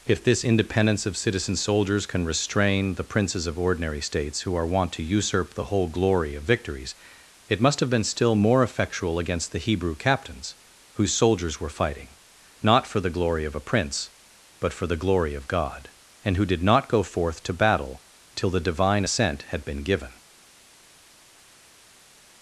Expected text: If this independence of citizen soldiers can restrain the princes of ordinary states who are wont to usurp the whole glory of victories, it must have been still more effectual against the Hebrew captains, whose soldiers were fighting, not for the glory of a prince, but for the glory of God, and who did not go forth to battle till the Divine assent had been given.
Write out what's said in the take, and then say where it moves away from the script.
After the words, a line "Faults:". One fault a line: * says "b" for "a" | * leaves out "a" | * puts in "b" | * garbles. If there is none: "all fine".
If this independence of citizen soldiers can restrain the princes of ordinary states who are wont to usurp the whole glory of victories, it must have been still more effectual against the Hebrew captains, whose soldiers were fighting, not for the glory of a prince, but for the glory of God, and who did not go forth to battle till the Divine assent had been given.
Faults:
all fine